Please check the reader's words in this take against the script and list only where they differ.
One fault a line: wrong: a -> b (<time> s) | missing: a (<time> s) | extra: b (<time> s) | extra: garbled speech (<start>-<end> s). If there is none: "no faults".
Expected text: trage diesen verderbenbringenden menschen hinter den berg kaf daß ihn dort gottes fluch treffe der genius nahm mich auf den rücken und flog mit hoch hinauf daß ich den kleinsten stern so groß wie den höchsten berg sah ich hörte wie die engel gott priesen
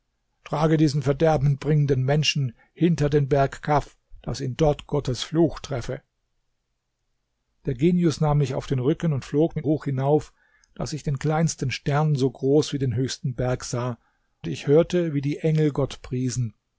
no faults